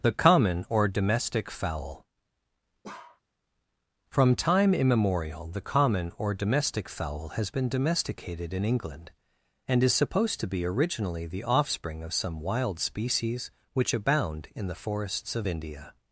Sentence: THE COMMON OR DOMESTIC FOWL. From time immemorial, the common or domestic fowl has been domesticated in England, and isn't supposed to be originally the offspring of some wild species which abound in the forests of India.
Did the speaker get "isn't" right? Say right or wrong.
wrong